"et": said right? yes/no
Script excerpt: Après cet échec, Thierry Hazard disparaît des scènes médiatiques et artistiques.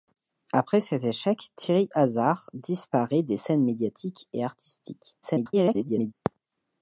yes